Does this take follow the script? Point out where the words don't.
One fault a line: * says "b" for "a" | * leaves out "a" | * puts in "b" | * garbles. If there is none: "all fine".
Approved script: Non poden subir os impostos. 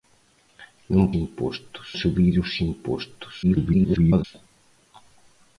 * says "impostos" for "poden"
* garbles